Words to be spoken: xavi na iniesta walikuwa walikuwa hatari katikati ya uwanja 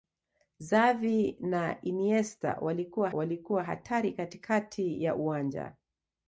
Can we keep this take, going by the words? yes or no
yes